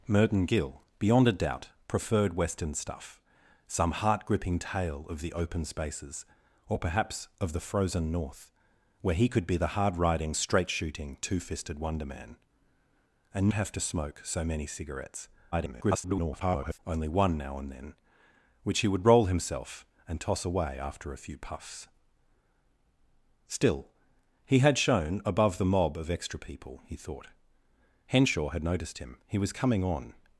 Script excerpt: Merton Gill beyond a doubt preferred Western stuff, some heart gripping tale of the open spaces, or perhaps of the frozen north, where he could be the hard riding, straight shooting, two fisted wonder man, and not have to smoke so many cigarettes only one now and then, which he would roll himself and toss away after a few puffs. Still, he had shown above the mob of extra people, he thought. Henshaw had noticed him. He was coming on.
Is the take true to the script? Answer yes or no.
no